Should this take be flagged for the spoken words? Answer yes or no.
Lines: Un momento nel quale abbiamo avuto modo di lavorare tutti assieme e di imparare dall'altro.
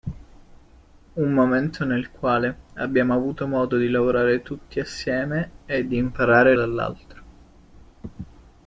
no